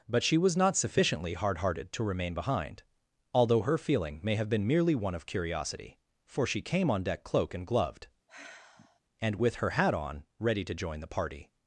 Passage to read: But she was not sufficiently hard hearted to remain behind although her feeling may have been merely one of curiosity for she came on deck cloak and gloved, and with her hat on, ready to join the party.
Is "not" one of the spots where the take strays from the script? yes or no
no